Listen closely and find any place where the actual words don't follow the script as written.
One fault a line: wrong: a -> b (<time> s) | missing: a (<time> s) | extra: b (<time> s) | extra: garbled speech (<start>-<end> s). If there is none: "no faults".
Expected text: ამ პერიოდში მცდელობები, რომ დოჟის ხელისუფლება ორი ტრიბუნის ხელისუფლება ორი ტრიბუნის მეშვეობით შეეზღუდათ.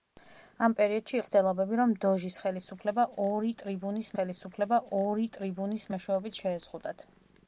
no faults